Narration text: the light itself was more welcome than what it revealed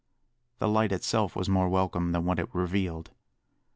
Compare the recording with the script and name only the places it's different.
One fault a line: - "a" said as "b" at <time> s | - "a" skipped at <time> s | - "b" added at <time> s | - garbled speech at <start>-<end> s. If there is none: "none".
none